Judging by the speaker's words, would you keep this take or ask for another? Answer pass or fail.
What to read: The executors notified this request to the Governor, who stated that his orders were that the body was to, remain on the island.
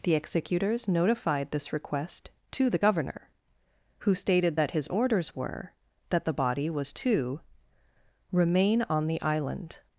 pass